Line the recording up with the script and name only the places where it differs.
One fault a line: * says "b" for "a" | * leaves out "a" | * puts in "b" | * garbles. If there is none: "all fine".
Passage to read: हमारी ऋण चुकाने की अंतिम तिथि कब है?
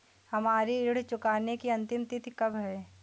all fine